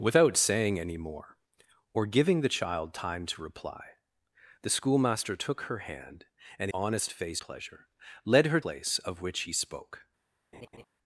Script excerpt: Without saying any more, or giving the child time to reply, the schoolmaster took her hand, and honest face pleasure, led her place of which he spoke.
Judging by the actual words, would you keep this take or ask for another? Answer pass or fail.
pass